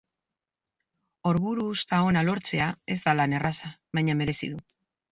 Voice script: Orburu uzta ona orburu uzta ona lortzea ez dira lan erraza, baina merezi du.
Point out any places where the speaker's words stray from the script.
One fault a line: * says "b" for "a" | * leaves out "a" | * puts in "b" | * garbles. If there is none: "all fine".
* leaves out "orburu uzta ona"
* says "da" for "dira"